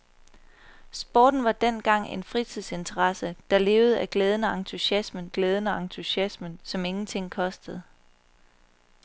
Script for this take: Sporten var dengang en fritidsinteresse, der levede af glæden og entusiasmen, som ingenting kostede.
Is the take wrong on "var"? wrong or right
right